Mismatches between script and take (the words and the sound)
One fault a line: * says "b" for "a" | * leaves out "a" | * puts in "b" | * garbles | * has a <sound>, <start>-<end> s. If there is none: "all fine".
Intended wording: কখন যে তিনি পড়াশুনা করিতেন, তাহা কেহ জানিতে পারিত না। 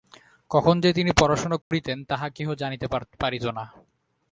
* has a dropout, 1.6-1.7 s